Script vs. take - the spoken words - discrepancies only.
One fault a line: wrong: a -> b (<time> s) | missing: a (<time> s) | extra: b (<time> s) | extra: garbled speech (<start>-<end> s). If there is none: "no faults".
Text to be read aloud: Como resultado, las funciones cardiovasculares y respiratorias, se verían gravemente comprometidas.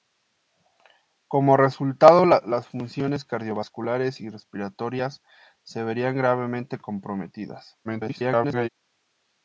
extra: garbled speech (7.8-8.7 s)